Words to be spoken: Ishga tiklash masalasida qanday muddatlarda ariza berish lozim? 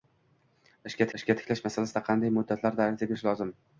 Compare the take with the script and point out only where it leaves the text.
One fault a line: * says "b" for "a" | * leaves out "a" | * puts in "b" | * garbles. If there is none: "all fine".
* puts in "ishga"